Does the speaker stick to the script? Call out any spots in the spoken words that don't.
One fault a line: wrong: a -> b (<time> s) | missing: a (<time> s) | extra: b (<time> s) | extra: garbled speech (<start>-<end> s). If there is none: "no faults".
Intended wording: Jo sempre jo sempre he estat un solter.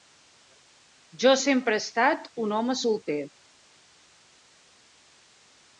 missing: jo sempre (1.7 s)
extra: home (2.6 s)